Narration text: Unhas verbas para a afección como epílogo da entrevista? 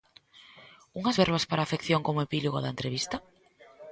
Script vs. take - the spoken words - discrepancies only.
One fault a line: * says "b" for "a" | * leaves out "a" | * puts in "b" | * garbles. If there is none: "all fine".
all fine